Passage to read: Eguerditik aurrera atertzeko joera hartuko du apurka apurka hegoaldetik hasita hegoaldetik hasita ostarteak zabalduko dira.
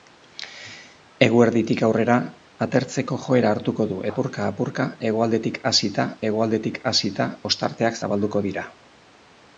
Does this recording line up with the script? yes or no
yes